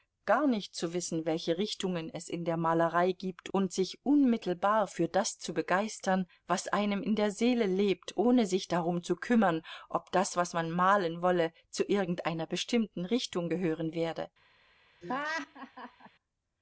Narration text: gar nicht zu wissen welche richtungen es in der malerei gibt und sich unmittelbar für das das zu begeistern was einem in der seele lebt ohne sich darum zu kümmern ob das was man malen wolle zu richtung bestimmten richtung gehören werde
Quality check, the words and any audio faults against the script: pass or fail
fail